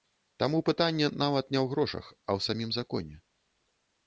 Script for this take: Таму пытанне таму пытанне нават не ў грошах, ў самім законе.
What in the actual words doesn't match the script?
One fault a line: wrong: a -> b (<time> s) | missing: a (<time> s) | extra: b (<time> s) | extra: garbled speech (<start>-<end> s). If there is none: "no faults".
missing: таму пытанне (1.1 s)
extra: а (2.3 s)